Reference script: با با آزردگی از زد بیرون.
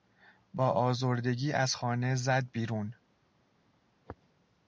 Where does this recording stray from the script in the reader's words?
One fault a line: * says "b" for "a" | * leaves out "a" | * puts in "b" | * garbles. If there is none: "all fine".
* leaves out "با"
* puts in "خانه"